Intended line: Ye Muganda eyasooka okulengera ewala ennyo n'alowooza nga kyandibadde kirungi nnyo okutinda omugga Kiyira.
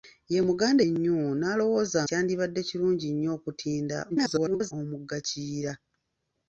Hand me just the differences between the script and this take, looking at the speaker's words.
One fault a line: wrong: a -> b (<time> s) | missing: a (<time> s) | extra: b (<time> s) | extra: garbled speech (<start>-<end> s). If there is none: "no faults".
missing: eyasooka okulengera ewala (0.8 s)
missing: nga (2.0 s)
extra: garbled speech (4.1-4.7 s)